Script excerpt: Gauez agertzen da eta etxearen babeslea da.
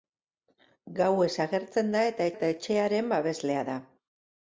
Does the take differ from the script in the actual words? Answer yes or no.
yes